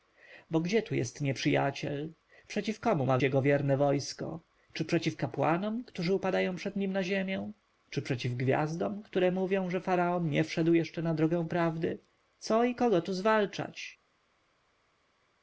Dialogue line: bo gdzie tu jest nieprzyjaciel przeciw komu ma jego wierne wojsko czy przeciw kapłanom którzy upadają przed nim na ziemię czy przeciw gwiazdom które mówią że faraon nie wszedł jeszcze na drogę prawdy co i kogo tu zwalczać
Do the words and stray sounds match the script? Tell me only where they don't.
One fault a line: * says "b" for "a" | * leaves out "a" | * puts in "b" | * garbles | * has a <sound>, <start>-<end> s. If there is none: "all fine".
all fine